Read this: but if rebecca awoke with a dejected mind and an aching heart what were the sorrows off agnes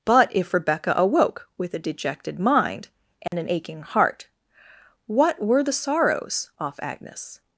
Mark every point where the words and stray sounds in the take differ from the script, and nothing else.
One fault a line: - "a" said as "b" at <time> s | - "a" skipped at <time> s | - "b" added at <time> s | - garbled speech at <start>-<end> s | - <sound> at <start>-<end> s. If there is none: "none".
- dropout at 3.3-3.3 s